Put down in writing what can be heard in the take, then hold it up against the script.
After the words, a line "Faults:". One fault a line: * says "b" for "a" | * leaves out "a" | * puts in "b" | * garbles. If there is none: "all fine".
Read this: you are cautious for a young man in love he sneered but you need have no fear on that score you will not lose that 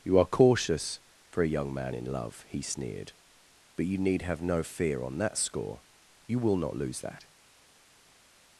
you are cautious for a young man in love he sneered but you need have no fear on that score you will not lose that
Faults:
all fine